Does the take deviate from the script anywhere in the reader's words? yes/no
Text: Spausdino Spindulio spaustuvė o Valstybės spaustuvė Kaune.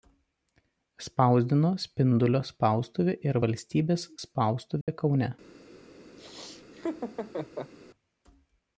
yes